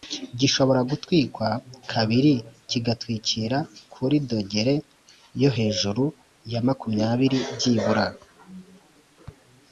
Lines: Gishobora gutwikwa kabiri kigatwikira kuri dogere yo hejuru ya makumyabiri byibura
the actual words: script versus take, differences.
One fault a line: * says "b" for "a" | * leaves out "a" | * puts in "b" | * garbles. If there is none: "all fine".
all fine